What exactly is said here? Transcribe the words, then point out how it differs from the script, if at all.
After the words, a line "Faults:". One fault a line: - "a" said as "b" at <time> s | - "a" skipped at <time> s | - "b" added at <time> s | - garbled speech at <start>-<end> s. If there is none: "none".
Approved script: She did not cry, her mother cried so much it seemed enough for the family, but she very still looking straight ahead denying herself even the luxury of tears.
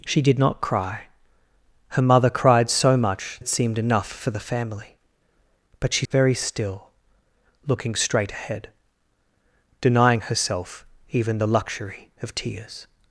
She did not cry, her mother cried so much it seemed enough for the family, but she very still looking straight ahead denying herself even the luxury of tears.
Faults:
none